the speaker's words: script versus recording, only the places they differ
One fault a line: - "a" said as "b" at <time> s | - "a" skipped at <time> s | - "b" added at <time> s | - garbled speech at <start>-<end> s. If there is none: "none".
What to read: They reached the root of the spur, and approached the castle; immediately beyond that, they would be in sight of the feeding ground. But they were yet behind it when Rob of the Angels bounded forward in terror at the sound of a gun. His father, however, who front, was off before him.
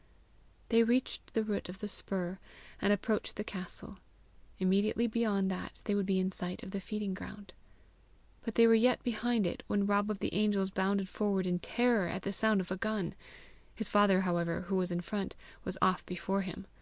- "was in" added at 14.8 s